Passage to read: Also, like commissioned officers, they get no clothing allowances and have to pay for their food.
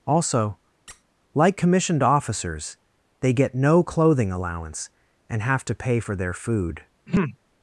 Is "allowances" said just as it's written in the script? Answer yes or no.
no